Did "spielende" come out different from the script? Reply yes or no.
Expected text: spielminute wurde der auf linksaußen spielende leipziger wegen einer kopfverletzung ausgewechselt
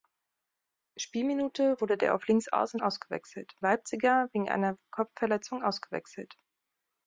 yes